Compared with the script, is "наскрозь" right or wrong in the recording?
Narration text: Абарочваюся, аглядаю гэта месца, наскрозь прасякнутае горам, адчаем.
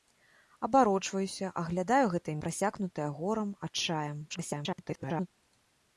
wrong